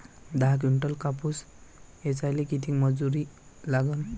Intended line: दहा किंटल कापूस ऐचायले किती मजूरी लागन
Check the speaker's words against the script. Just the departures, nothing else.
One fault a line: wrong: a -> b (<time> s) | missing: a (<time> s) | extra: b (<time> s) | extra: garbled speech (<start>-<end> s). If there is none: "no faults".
no faults